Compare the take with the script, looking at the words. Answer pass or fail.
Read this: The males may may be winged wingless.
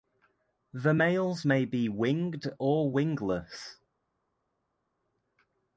fail